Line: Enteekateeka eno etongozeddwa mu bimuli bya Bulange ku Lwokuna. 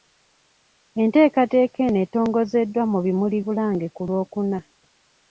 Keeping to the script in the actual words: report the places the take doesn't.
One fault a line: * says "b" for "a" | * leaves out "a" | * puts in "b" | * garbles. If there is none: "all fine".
* leaves out "bya"